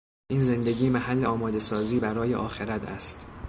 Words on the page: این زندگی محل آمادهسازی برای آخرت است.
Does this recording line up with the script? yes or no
yes